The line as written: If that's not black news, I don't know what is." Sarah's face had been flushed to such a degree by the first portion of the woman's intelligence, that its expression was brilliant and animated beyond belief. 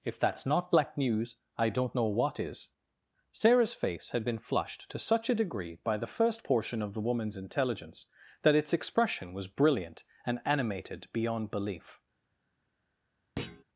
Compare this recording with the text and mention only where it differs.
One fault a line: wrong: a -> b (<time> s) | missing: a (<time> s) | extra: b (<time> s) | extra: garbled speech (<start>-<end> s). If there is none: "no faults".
no faults